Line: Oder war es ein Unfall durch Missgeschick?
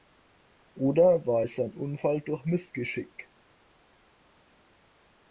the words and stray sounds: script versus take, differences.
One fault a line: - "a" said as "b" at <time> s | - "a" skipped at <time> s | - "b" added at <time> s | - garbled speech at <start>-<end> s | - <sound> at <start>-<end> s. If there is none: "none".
none